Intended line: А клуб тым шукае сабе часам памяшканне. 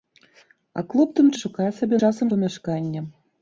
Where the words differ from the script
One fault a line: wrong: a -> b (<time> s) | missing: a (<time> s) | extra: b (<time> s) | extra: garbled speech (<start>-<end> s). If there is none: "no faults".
no faults